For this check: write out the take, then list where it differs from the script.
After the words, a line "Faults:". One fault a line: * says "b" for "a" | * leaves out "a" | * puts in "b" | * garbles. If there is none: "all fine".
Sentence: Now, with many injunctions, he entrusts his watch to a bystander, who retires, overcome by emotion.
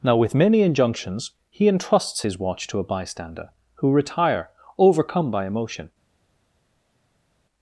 Now, with many injunctions, he entrusts his watch to a bystander, who retire, overcome by emotion.
Faults:
* says "retire" for "retires"